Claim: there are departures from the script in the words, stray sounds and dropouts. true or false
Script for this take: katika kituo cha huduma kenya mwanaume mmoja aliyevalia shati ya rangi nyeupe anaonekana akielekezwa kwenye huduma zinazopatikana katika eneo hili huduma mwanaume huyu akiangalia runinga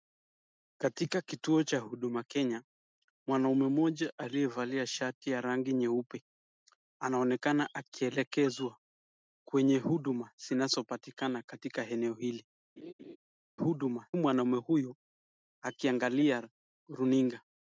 true